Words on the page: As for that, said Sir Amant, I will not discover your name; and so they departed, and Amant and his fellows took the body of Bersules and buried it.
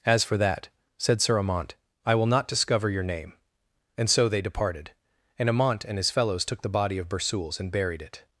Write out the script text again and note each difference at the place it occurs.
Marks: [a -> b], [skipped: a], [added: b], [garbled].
As for that, said Sir Amant, I will not discover your name; and so they departed, and Amant and his fellows took the body of Bersules and buried it.